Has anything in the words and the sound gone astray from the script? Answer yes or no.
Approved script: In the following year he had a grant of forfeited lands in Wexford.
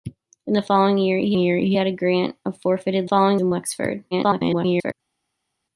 yes